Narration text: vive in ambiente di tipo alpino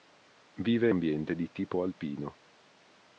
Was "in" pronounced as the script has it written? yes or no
no